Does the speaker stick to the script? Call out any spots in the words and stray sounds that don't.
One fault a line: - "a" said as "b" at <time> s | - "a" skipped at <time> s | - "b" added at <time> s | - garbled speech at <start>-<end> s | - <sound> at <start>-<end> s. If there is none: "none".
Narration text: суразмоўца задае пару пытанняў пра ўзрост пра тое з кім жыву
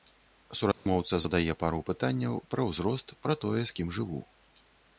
- dropout at 0.7-0.9 s